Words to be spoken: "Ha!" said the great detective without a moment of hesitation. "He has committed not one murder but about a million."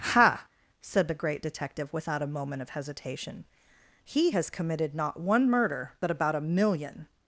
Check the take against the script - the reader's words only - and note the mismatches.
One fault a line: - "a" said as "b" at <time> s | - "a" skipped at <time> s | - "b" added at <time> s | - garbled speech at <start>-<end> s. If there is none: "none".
none